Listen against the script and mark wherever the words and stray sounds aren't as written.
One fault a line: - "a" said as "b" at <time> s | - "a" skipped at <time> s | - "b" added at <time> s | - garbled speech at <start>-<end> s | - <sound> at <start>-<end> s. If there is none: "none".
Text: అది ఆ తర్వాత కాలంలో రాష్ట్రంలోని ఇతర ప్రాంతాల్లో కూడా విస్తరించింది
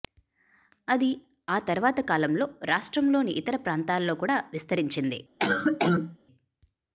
- cough at 5.4-6.2 s